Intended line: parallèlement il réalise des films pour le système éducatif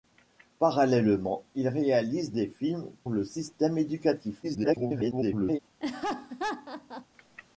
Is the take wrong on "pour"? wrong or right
wrong